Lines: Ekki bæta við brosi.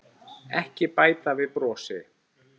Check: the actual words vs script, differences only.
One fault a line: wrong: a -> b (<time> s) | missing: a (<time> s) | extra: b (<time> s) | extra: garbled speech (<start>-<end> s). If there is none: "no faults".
no faults